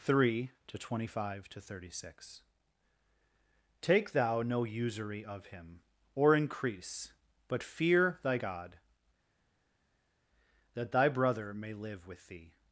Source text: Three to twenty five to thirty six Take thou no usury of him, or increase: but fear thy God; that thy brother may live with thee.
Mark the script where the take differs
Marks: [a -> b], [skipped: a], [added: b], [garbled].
Three to twenty five to thirty six Take thou no usury of him, or increase: but fear thy God; that thy brother may live with thee.